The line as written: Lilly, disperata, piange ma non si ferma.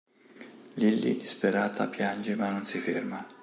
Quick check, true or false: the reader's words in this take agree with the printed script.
true